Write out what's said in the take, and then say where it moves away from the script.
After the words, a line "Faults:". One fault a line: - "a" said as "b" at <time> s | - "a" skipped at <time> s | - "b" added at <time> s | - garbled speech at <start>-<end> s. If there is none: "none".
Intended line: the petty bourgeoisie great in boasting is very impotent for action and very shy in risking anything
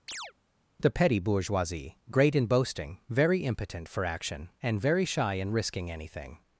the petty bourgeoisie great in boasting very impotent for action and very shy in risking anything
Faults:
- "is" skipped at 3.0 s